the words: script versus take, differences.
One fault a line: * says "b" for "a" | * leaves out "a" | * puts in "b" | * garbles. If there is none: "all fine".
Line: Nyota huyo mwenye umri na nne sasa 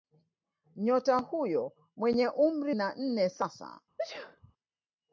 all fine